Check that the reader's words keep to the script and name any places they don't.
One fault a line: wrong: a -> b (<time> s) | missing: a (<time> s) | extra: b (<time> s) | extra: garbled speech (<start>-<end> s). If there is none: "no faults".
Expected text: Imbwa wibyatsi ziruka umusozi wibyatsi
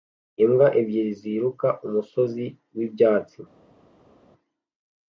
wrong: wibyatsi -> ebyiri (0.8 s)